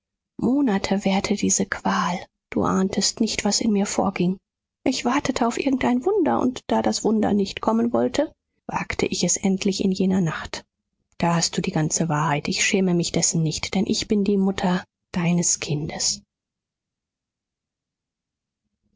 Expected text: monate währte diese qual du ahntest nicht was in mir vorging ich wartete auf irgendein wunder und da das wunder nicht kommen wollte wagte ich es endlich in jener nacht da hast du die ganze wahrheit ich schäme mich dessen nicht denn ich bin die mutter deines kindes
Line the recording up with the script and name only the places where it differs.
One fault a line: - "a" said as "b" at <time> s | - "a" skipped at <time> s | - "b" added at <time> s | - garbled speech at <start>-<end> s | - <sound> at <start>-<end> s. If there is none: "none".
none